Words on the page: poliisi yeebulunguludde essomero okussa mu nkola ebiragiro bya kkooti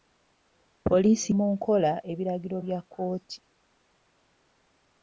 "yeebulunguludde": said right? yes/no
no